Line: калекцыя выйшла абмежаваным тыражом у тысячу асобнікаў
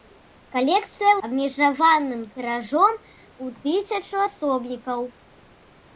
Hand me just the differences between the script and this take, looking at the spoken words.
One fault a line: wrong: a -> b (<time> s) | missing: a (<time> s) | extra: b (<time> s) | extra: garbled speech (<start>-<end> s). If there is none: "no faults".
missing: выйшла (1.1 s)